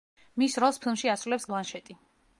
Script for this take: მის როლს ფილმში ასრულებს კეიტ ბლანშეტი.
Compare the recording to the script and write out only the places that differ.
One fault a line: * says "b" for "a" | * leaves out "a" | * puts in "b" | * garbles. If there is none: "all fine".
* leaves out "კეიტ"